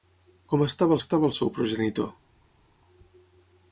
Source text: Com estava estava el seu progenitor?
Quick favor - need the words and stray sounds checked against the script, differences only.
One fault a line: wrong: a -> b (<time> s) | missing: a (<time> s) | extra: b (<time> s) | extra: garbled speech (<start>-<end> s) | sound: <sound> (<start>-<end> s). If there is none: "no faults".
no faults